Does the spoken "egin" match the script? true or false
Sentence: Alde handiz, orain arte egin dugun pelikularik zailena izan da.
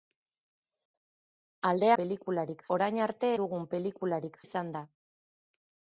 false